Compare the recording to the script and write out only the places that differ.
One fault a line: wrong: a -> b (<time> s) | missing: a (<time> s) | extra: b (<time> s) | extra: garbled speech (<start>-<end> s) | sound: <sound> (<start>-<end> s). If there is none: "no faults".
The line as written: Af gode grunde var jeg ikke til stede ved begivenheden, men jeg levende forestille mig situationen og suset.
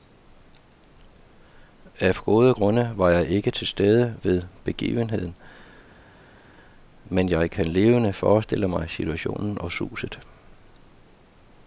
extra: kan (7.5 s)